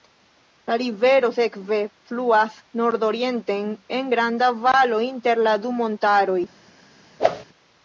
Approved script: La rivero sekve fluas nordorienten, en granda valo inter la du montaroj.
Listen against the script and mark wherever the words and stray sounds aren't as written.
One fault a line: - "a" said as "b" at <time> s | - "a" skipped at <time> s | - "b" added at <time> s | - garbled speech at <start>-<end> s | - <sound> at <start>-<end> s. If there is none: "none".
- whoosh at 7.2-7.4 s